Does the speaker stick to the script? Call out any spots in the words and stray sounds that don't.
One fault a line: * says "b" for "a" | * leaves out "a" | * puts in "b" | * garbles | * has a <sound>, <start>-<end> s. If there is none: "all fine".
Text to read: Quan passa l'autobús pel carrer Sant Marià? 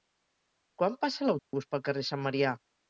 * has a dropout, 1.4-1.5 s